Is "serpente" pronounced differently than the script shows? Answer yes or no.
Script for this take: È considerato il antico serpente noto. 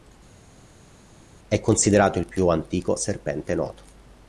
no